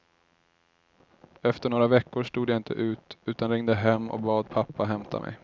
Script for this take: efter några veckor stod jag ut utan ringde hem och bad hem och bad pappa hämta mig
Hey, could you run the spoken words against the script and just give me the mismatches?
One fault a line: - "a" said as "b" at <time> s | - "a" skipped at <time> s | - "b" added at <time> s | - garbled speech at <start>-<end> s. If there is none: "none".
- "inte" added at 2.6 s
- "hem och bad" skipped at 4.5 s